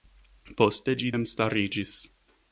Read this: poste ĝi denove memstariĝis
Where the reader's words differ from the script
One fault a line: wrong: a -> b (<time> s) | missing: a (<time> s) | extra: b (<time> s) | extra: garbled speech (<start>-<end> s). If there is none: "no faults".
missing: denove (1.1 s)